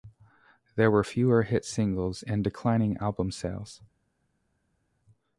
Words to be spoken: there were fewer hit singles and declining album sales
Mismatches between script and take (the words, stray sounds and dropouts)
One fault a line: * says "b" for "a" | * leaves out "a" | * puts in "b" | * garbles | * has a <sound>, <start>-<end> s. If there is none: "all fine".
all fine